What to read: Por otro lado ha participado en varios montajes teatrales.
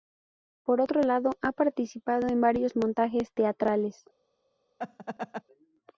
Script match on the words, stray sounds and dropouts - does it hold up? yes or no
no